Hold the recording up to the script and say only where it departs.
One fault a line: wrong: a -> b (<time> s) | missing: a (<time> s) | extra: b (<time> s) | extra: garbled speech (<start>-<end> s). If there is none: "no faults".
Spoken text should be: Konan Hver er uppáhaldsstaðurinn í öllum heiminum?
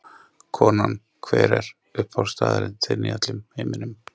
extra: þinn (2.9 s)